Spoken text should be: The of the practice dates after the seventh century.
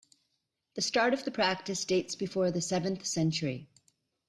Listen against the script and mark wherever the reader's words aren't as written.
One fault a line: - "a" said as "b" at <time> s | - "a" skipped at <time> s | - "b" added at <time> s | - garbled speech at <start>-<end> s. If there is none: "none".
- "start" added at 0.8 s
- "after" said as "before" at 2.1 s